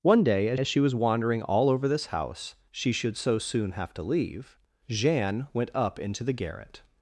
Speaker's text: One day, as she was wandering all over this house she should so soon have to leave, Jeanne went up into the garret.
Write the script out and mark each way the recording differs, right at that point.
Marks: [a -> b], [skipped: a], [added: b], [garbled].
One day, as [added: as] she was wandering all over this house she should so soon have to leave, Jeanne went up into the garret.